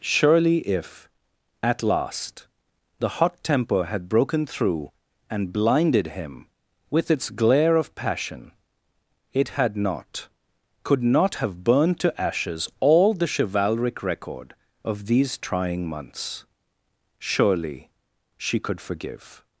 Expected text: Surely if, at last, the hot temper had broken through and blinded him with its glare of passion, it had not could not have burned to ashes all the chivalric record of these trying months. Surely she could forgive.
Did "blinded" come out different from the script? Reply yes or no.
no